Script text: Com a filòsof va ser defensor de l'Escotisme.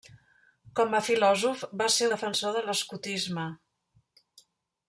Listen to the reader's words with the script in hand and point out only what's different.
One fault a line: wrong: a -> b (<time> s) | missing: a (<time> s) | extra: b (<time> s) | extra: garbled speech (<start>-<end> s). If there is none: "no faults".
no faults